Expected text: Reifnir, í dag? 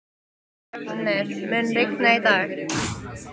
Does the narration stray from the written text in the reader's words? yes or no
yes